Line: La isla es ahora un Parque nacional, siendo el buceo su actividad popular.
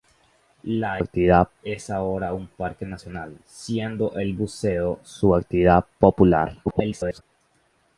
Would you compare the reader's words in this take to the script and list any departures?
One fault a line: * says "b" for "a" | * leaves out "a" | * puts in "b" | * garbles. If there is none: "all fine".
* says "actividad" for "isla"
* garbles